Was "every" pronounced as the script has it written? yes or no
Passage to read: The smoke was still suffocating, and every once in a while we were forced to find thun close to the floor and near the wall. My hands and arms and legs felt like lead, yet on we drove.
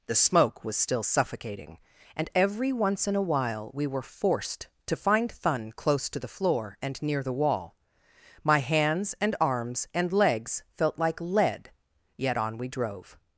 yes